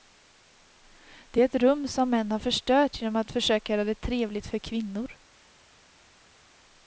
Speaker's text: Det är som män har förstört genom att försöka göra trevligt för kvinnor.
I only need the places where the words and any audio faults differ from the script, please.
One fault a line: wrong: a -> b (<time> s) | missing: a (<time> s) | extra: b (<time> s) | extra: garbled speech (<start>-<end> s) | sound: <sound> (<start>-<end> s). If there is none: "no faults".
extra: ett rum (1.5 s)
extra: det (3.8 s)